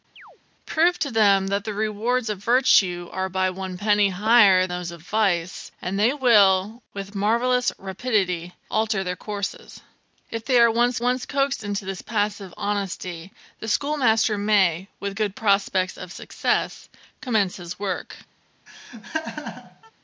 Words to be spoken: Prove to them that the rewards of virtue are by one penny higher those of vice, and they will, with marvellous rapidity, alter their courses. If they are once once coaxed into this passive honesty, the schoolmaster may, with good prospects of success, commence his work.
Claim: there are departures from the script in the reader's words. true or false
false